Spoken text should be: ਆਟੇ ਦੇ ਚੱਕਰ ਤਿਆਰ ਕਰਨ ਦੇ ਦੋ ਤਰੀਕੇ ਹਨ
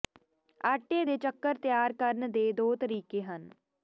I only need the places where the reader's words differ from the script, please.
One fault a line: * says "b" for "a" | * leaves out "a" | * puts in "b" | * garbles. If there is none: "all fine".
all fine